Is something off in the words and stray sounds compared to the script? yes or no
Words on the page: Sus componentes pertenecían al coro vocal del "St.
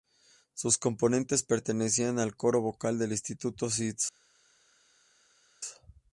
yes